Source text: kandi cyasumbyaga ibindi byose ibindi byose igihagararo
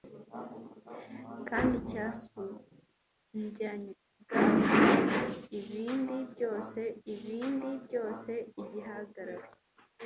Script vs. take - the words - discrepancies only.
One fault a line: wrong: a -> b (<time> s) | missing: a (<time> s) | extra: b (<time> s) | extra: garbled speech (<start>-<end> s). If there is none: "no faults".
no faults